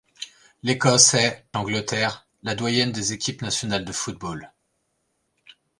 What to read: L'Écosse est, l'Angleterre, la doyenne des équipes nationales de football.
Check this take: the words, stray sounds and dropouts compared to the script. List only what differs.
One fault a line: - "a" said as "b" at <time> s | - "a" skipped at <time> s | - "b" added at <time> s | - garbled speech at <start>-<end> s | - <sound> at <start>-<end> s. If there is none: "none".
none